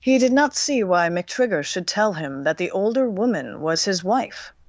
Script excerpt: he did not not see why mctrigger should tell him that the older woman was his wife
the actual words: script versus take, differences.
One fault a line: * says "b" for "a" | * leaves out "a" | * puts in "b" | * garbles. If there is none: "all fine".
* leaves out "not"